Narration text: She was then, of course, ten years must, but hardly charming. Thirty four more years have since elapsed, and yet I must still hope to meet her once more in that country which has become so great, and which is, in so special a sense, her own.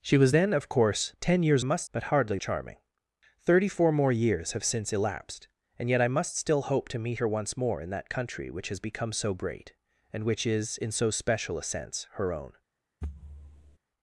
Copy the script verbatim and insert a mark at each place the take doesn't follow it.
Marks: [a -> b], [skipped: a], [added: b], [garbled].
She was then, of course, ten years must, but hardly charming. Thirty four more years have since elapsed, and yet I must still hope to meet her once more in that country which has become so great, and which is, in so special a sense, her own.